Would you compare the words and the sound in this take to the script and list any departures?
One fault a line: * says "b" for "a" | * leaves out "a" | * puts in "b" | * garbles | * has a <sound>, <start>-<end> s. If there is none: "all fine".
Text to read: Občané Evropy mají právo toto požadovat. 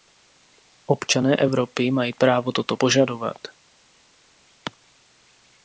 all fine